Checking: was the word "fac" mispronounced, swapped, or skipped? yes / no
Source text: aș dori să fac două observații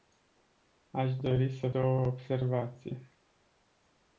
yes